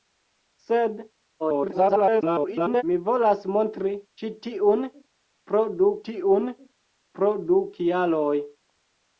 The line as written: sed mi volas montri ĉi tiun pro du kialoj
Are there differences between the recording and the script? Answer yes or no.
yes